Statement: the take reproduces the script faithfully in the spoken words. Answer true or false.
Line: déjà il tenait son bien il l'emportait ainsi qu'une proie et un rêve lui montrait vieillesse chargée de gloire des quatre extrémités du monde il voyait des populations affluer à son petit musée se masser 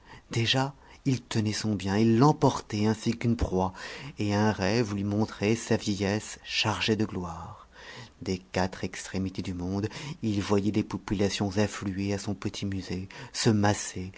false